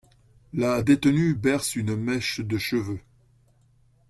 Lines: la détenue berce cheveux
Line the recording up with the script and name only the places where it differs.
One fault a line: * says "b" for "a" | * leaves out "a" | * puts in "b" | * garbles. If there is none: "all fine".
* puts in "une mèche de"